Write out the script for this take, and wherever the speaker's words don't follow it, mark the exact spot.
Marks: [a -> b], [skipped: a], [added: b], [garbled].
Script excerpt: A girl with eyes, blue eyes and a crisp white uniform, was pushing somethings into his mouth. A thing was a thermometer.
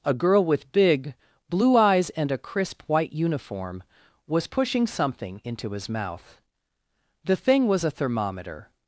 A girl with [eyes, -> big] blue eyes and a crisp white uniform, was pushing [somethings -> something] into his mouth. [A -> The] thing was a thermometer.